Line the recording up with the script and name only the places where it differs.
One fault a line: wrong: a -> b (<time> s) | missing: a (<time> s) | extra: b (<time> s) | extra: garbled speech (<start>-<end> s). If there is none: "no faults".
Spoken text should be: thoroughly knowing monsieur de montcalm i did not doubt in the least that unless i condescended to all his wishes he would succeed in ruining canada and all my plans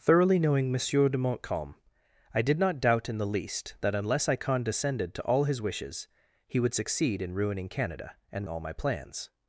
no faults